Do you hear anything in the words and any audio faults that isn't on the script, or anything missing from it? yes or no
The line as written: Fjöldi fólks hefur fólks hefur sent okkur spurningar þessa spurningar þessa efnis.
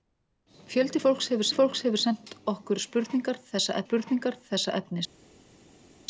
no